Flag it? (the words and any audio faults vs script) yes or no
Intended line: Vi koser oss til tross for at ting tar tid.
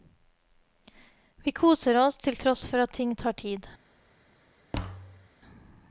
yes